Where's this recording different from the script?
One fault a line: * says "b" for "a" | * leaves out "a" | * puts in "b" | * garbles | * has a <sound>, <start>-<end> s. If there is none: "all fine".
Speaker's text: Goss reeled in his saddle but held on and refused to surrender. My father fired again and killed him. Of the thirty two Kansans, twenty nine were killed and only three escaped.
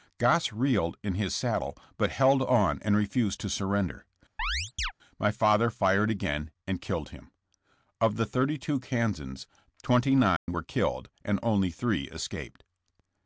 * has a chirp, 4.4-4.9 s
* has a dropout, 10.4-10.5 s